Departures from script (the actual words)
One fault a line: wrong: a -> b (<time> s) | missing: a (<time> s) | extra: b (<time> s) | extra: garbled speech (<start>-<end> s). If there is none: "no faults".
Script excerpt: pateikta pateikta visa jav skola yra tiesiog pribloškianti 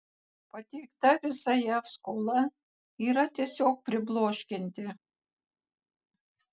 missing: pateikta (1.1 s)